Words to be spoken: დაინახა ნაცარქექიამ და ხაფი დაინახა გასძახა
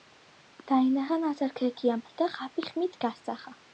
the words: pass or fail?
fail